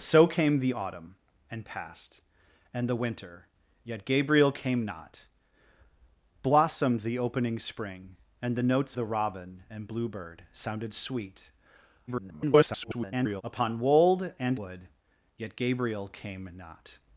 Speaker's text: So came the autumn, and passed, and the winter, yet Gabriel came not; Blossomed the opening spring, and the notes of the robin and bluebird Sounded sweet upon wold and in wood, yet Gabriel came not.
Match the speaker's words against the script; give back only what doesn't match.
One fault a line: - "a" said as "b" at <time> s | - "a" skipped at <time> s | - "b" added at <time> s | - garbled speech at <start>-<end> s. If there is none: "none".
- "of" skipped at 9.0 s
- garbled speech at 12.1-13.4 s
- "in" skipped at 14.6 s